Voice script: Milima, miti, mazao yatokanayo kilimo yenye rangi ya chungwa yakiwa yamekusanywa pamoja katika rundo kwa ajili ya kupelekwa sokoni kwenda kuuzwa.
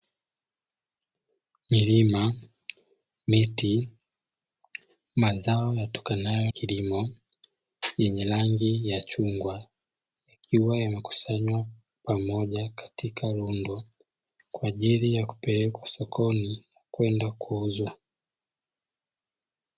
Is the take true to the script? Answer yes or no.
yes